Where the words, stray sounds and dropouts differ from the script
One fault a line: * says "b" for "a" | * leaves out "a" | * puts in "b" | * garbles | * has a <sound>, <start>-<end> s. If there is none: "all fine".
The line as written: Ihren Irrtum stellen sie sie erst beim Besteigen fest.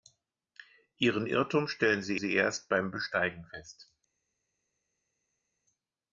all fine